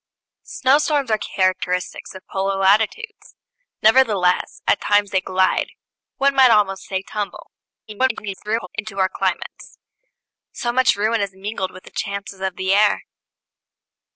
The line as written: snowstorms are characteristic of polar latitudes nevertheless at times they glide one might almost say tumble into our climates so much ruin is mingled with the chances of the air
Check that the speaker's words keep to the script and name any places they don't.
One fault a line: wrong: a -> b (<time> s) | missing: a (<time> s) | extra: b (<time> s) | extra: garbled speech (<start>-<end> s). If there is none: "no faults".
extra: garbled speech (7.9-8.7 s)